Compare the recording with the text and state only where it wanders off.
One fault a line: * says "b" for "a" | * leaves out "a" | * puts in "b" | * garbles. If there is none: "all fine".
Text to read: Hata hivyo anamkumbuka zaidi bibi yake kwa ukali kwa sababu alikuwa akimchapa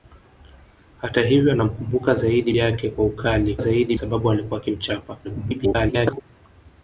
* leaves out "bibi"
* says "zaidi" for "kwa"
* garbles